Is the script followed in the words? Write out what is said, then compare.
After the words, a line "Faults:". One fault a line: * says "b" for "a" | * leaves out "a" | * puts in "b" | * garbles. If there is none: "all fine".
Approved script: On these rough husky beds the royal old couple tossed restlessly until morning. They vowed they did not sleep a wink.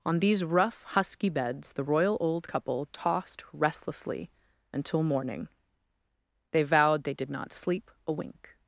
On these rough husky beds the royal old couple tossed restlessly until morning. They vowed they did not sleep a wink.
Faults:
all fine